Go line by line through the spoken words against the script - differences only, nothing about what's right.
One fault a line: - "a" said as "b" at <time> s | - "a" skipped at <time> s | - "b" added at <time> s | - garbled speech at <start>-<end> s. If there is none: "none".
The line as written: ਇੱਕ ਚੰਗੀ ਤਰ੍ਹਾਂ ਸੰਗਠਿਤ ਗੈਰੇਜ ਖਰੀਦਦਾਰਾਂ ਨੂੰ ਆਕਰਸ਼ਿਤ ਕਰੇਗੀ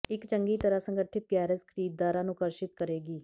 none